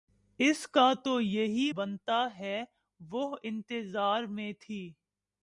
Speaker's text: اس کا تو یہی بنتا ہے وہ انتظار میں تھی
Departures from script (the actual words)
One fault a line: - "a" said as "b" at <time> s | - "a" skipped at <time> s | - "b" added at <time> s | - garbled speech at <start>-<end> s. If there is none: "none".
none